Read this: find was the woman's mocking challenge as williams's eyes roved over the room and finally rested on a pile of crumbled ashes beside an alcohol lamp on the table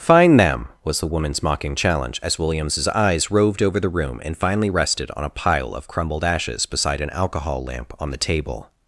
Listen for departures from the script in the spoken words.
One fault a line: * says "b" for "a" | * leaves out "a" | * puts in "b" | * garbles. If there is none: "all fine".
* puts in "them"